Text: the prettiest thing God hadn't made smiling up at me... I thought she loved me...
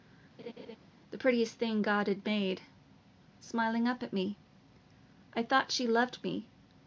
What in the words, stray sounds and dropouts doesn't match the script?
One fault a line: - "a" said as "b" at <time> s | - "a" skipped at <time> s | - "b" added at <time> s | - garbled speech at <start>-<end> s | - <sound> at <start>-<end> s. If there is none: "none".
- laugh at 0.4-0.8 s
- "hadn't" said as "had" at 2.1 s